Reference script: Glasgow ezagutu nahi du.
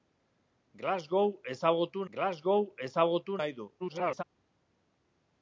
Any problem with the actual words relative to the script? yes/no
yes